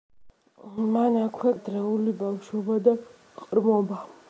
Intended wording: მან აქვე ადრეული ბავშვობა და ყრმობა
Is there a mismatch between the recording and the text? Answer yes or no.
no